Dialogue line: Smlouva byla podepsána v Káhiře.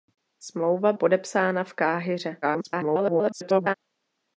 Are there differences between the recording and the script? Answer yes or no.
yes